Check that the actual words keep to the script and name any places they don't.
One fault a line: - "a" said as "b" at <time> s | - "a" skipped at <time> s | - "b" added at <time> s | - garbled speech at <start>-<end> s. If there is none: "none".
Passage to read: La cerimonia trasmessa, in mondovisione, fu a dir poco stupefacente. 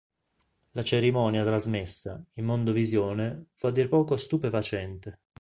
none